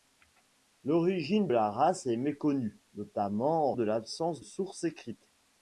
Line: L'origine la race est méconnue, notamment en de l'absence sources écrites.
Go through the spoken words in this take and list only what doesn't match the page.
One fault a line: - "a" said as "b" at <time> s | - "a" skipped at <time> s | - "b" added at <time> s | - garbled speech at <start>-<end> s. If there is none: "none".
none